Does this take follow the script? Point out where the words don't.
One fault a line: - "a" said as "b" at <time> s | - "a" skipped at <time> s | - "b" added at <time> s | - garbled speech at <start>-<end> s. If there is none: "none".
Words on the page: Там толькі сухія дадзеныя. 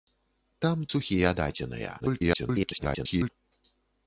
- "толькі" skipped at 0.8 s
- garbled speech at 2.0-3.3 s